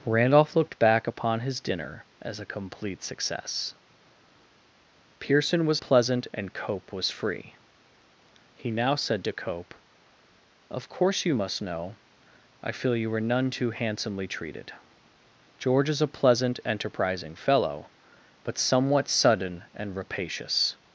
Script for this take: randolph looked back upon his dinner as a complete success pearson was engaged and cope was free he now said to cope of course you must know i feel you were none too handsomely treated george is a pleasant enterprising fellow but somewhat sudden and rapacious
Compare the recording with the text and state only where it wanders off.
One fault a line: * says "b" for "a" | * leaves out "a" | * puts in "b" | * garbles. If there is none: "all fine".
* says "pleasant" for "engaged"